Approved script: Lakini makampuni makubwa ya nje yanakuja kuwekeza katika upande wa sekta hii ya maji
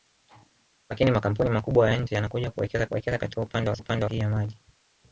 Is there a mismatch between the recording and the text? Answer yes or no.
yes